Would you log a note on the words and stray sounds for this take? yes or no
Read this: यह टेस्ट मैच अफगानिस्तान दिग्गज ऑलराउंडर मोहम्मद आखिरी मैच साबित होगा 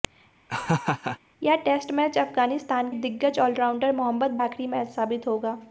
yes